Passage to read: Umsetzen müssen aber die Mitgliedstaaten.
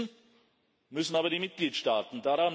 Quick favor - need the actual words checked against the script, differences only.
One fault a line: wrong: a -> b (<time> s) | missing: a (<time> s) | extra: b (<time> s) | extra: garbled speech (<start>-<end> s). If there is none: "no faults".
no faults